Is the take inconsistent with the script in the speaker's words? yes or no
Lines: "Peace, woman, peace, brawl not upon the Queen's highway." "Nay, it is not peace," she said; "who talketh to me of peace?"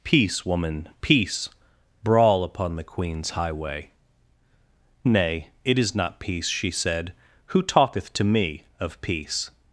yes